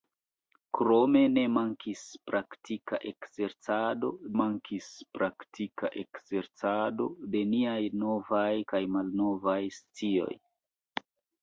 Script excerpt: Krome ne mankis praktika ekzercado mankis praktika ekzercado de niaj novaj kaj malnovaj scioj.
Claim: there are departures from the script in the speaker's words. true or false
false